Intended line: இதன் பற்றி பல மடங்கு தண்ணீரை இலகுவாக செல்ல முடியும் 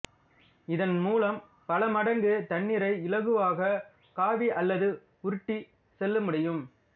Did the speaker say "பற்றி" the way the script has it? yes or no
no